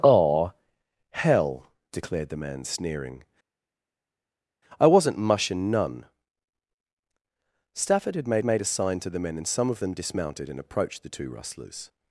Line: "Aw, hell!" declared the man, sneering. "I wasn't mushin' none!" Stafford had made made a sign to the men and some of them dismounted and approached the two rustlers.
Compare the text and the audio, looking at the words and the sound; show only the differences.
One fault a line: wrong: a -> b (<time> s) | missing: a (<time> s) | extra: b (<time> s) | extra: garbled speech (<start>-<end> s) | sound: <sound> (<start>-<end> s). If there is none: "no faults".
no faults